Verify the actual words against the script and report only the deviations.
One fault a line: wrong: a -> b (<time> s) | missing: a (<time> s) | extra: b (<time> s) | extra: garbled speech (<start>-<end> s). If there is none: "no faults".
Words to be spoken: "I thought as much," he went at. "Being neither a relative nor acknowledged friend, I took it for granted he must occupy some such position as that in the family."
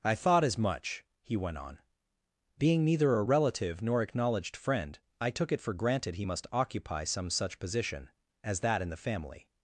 wrong: at -> on (1.6 s)